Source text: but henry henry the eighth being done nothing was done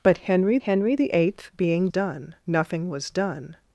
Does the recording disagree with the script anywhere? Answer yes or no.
no